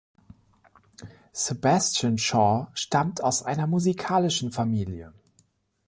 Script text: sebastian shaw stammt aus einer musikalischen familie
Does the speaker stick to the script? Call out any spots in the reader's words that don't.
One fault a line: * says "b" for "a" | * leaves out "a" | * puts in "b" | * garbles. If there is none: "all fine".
all fine